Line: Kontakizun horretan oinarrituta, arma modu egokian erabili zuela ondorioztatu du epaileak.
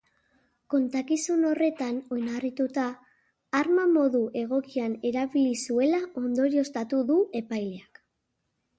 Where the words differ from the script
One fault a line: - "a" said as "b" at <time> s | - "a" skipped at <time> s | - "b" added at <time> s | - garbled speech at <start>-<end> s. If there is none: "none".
none